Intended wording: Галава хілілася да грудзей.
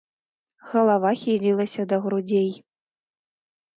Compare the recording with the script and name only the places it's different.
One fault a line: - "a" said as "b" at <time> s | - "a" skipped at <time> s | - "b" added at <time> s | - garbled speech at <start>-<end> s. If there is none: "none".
none